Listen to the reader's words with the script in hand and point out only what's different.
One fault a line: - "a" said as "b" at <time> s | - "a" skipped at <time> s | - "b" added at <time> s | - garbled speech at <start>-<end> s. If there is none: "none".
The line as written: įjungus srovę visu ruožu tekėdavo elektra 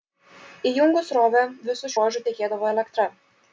none